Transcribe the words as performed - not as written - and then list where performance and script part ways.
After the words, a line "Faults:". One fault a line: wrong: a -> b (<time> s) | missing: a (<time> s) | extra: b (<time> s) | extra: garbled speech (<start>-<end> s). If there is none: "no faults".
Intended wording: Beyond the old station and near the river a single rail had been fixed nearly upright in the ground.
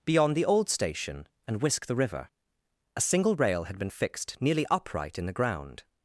Beyond the old station and whisk the river a single rail had been fixed nearly upright in the ground.
Faults:
wrong: near -> whisk (1.6 s)